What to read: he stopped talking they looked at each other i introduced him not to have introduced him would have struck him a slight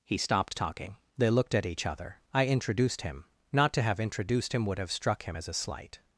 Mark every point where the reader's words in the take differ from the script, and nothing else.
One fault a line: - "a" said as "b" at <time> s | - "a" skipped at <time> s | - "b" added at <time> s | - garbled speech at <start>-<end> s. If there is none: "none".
- "as" added at 5.3 s